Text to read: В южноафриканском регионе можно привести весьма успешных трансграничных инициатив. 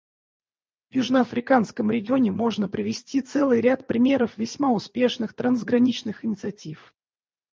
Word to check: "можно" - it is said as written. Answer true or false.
true